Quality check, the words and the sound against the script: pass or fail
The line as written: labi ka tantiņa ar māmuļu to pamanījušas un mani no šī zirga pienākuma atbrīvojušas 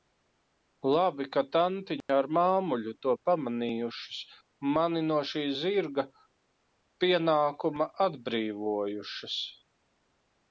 fail